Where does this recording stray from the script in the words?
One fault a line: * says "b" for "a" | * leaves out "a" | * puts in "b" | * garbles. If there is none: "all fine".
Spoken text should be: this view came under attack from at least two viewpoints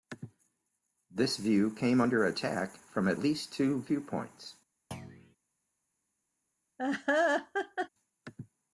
all fine